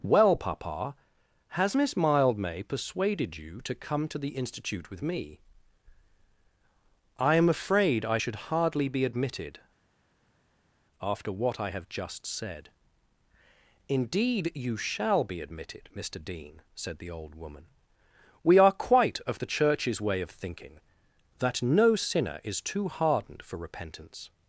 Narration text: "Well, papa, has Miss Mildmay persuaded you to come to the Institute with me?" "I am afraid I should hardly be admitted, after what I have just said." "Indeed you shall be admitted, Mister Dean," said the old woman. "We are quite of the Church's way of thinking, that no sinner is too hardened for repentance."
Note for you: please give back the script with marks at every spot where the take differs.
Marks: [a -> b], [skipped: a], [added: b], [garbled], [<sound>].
"Well, papa, has Miss Mildmay persuaded you to come to the Institute with me?" "I am afraid I should hardly be admitted, after what I have just said." "Indeed you shall be admitted, Mister Dean," said the old woman. "We are quite of the Church's way of thinking, that no sinner is too hardened for repentance."